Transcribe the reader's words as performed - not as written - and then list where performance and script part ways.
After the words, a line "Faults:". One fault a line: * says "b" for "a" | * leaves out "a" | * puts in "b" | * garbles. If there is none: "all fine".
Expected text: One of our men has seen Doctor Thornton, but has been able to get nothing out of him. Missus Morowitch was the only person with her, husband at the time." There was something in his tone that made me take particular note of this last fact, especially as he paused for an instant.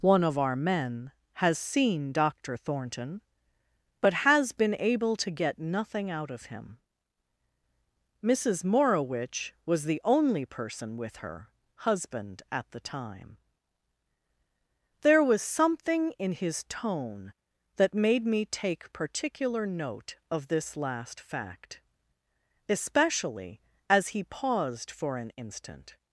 One of our men has seen Doctor Thornton, but has been able to get nothing out of him. Missus Morowitch was the only person with her, husband at the time." There was something in his tone that made me take particular note of this last fact, especially as he paused for an instant.
Faults:
all fine